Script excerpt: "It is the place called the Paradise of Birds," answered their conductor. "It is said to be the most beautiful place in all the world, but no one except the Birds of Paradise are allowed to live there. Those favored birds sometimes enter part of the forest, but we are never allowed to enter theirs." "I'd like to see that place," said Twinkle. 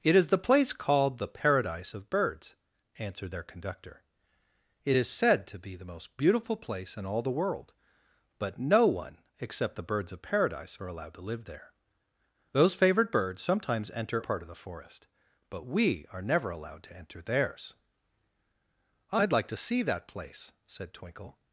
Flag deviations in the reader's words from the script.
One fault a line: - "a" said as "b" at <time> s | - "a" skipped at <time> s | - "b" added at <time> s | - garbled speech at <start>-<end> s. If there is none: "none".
none